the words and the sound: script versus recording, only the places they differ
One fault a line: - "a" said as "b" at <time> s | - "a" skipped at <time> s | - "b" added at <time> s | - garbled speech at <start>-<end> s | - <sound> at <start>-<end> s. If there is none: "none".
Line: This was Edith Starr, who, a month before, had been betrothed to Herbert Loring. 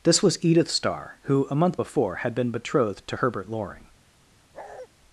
- bark at 4.5-4.9 s